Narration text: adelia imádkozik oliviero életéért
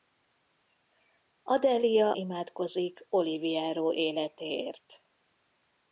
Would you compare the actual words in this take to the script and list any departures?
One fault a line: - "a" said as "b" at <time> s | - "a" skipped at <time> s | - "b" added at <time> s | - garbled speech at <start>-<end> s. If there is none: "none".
none